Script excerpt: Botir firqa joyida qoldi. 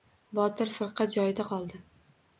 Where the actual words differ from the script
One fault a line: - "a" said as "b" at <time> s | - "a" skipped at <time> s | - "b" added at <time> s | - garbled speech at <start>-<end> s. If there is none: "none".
none